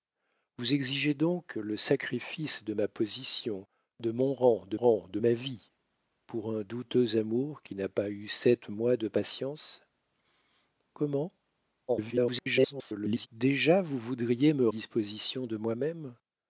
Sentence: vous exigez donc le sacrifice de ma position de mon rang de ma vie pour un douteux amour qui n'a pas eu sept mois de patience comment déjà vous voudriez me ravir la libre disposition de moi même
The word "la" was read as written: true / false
false